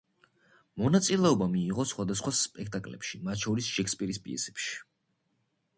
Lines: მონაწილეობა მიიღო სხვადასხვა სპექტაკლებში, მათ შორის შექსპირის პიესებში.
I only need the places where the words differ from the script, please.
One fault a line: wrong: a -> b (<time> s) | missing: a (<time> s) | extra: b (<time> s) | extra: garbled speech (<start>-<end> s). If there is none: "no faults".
no faults